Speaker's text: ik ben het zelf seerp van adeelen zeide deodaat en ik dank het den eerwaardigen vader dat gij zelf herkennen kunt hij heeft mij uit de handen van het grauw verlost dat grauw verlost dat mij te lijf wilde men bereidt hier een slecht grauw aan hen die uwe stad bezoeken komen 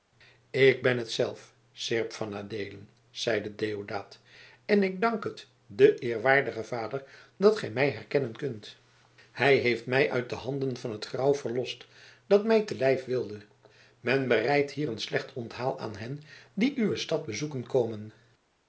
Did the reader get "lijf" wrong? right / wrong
right